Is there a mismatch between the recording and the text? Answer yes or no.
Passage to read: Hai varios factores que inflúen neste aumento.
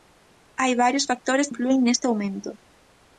yes